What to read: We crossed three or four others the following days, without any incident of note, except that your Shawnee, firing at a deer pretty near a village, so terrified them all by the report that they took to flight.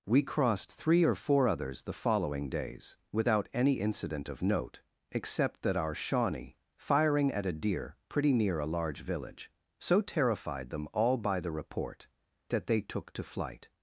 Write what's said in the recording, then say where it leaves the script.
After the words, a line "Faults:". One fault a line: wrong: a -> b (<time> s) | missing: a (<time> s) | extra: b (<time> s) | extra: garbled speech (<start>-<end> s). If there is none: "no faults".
We crossed three or four others the following days, without any incident of note, except that our Shawnee, firing at a deer pretty near a large village, so terrified them all by the report that they took to flight.
Faults:
wrong: your -> our (5.7 s)
extra: large (8.7 s)